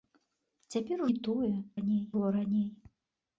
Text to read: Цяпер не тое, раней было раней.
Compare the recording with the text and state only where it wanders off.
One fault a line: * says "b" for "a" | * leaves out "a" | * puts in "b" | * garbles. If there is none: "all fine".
all fine